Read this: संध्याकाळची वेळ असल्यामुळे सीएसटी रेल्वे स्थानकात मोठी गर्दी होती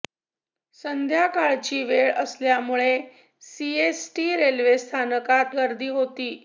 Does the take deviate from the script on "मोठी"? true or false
true